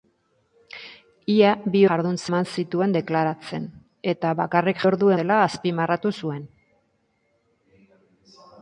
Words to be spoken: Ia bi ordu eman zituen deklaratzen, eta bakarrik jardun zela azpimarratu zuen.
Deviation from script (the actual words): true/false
true